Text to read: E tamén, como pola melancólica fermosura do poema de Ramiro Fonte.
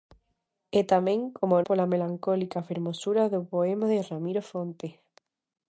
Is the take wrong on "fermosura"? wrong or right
right